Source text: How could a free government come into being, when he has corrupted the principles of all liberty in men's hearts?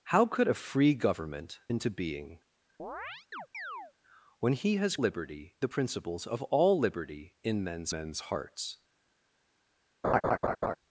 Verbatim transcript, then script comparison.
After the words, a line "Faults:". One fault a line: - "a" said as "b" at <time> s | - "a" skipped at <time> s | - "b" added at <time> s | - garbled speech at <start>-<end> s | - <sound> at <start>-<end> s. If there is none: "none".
How could a free government into being, when he has liberty the principles of all liberty in men's men's hearts?
Faults:
- "come" skipped at 1.6 s
- chirp at 2.8-3.9 s
- "corrupted" said as "liberty" at 5.0 s
- "men's" added at 7.9 s
- laugh at 10.0-10.8 s